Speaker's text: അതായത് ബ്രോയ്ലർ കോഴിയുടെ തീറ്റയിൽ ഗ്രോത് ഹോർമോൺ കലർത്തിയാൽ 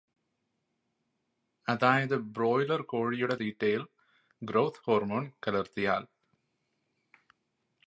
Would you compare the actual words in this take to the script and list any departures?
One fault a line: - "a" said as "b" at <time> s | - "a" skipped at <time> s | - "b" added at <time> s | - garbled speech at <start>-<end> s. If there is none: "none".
none